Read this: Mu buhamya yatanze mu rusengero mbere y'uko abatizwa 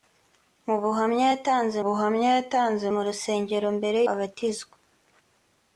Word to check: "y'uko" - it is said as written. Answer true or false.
false